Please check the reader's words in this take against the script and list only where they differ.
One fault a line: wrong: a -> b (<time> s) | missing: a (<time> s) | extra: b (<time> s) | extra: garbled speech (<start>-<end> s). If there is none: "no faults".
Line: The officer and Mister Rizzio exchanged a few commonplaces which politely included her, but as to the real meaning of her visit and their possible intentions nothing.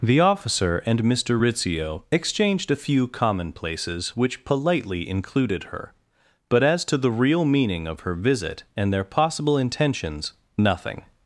no faults